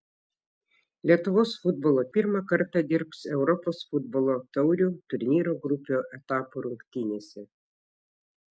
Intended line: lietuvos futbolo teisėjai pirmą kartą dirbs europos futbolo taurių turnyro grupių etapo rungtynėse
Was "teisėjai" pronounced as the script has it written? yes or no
no